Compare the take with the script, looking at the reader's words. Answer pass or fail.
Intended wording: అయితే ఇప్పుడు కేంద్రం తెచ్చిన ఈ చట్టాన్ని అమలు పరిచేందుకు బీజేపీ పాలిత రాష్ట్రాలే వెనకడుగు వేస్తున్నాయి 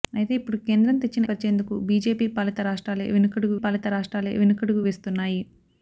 fail